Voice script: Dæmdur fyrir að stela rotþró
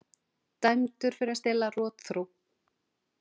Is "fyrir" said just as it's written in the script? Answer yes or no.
yes